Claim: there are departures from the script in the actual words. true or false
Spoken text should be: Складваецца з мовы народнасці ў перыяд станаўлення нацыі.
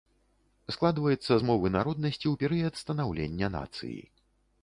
false